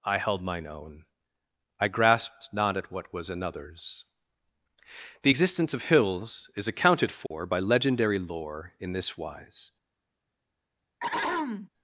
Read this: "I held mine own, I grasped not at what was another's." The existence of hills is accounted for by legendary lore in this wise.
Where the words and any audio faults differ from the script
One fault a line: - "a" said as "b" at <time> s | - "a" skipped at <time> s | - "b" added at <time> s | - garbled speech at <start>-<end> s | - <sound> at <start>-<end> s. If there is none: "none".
- dropout at 7.3-7.3 s
- throat clearing at 11.0-11.7 s